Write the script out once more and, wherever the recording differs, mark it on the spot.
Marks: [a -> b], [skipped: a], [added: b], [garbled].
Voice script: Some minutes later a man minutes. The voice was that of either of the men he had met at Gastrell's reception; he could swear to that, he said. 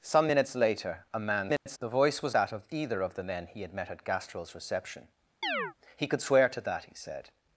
Some minutes later a man minutes. The voice was that of either of the men he had met at Gastrell's reception; he could swear to that, he said.